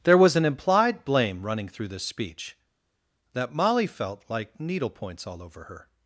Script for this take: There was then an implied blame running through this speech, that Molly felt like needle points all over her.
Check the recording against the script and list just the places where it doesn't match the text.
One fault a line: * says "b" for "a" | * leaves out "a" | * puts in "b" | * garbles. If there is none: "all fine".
* leaves out "then"